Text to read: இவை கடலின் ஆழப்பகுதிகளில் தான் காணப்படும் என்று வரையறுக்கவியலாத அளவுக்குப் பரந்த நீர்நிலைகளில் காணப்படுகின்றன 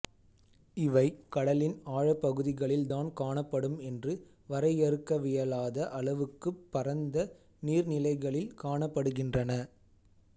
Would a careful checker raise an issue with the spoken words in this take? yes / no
no